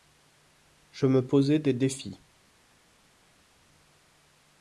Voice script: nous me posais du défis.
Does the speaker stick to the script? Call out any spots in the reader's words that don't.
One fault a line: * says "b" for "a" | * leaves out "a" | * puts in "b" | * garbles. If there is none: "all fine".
* says "je" for "nous"
* says "des" for "du"